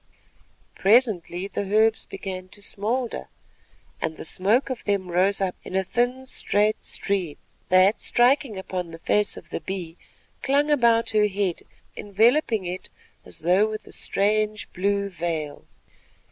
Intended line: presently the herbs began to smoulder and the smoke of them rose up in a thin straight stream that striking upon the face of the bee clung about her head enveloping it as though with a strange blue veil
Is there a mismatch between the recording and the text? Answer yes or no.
no